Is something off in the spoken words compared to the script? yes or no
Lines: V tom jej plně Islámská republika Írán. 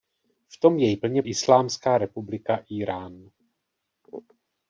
no